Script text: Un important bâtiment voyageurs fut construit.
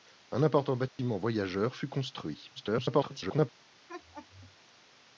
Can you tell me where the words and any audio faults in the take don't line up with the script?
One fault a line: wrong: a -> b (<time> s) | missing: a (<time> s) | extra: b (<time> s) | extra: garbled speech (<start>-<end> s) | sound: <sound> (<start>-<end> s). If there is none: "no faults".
sound: dropout (0.9-1.0 s)
extra: garbled speech (2.6-3.5 s)
sound: laugh (3.9-4.6 s)